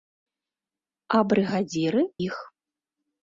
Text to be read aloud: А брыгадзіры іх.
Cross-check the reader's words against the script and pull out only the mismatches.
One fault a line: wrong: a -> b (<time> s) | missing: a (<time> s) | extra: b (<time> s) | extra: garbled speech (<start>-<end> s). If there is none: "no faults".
no faults